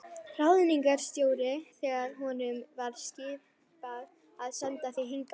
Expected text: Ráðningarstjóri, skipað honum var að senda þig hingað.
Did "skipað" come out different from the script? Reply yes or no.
yes